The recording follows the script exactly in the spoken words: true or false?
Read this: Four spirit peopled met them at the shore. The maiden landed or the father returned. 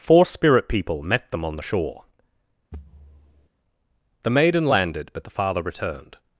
false